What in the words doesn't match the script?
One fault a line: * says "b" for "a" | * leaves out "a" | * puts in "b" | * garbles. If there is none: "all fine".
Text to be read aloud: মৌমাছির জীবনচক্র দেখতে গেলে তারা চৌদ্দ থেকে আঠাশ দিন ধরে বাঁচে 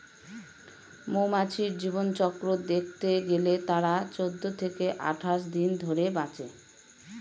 all fine